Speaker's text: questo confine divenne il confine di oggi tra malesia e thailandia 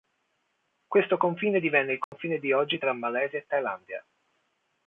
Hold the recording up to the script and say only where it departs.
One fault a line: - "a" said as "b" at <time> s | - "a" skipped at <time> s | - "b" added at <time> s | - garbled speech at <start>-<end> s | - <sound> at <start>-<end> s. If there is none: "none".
- dropout at 2.0-2.1 s